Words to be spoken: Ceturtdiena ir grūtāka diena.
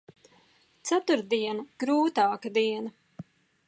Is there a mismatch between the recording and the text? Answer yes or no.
yes